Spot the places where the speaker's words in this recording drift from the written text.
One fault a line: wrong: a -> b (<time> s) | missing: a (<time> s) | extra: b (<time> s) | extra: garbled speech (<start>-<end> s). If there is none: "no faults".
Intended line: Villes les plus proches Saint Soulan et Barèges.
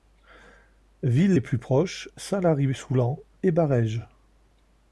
extra: Lary (2.4 s)